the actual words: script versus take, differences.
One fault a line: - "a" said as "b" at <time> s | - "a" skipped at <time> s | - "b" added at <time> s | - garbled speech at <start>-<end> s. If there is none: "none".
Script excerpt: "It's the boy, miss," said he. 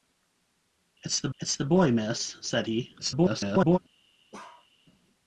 - "it's the" added at 1.4 s
- garbled speech at 3.0-3.8 s